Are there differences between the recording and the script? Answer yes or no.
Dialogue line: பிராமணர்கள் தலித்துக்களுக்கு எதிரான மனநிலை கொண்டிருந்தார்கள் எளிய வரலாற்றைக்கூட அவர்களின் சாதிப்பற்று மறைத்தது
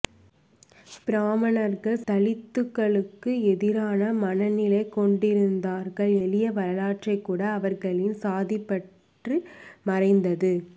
no